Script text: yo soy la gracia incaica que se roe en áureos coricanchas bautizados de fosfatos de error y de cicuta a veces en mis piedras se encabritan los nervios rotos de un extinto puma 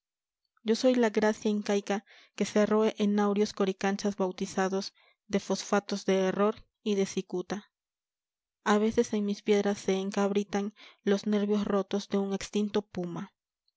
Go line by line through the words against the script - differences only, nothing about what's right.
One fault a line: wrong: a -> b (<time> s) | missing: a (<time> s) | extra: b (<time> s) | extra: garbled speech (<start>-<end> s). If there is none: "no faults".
no faults